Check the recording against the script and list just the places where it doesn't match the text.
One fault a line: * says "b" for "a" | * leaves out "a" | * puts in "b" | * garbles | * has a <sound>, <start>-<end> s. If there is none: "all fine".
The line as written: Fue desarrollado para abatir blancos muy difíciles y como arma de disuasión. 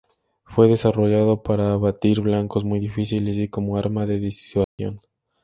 * has a dropout, 4.6-4.8 s